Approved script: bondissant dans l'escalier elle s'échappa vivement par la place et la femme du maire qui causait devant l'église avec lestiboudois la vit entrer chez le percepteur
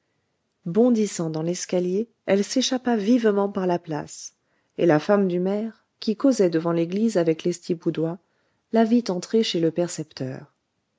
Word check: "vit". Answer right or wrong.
right